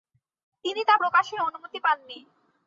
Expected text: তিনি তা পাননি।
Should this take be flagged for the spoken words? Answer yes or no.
yes